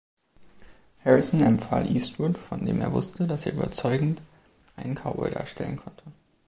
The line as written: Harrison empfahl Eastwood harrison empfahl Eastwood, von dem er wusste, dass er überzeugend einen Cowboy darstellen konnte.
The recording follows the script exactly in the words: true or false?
false